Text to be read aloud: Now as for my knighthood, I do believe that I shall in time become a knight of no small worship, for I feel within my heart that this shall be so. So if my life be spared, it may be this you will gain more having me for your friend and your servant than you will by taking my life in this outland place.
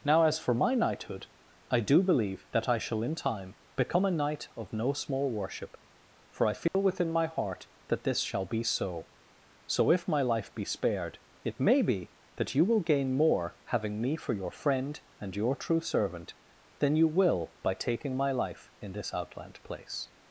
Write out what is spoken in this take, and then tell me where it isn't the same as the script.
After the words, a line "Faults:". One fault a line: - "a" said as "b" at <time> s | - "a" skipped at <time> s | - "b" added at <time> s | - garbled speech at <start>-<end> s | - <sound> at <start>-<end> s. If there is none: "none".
Now as for my knighthood, I do believe that I shall in time become a knight of no small worship, for I feel within my heart that this shall be so. So if my life be spared, it may be that you will gain more having me for your friend and your true servant than you will by taking my life in this outland place.
Faults:
- dropout at 6.7-6.7 s
- "this" said as "that" at 12.4 s
- "true" added at 15.6 s